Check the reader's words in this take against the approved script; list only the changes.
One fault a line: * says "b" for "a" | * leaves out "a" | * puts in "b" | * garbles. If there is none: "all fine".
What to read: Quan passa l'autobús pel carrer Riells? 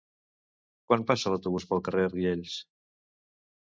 all fine